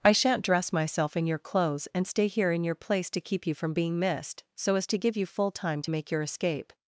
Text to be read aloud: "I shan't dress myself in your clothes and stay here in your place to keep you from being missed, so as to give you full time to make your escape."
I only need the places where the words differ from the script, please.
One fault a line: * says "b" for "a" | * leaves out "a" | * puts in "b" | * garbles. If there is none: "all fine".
all fine